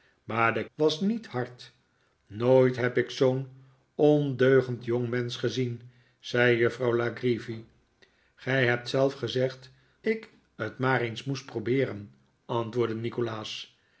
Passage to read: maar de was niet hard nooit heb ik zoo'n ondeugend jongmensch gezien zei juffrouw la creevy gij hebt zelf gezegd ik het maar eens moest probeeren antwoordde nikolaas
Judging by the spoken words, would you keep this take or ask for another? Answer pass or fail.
pass